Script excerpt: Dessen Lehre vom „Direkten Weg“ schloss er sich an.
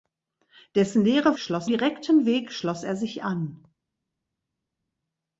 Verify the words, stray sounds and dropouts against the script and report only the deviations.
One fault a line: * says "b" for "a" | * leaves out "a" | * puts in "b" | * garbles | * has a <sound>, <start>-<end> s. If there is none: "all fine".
* says "schloss" for "vom"